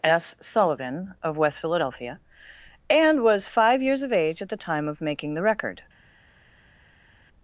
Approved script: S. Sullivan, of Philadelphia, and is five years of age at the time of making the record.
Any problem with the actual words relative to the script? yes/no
yes